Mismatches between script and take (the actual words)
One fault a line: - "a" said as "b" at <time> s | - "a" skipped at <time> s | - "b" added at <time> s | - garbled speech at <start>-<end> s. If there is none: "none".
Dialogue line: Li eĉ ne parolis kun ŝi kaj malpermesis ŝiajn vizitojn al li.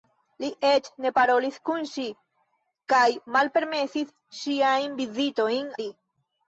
- "al" skipped at 5.7 s